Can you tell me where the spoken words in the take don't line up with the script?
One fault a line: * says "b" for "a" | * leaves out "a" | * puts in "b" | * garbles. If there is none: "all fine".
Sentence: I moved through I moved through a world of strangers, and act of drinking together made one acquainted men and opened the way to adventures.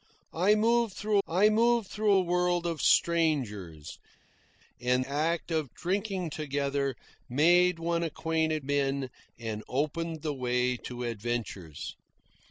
all fine